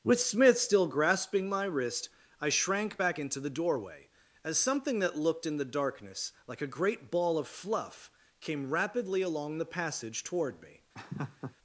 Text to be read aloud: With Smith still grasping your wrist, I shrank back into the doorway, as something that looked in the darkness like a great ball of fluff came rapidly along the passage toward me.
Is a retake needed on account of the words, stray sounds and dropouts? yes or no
yes